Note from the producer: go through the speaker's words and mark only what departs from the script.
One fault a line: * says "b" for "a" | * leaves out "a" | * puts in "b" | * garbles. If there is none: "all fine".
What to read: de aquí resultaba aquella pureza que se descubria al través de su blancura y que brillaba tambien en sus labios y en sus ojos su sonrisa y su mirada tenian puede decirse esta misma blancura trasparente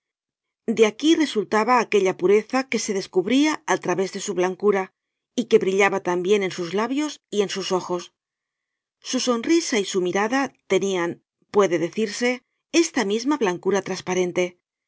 all fine